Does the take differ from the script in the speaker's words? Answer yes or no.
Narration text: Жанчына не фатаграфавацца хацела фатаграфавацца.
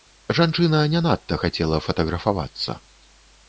yes